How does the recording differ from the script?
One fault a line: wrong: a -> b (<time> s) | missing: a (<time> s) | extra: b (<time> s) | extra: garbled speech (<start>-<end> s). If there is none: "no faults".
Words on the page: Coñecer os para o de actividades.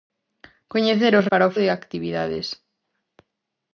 no faults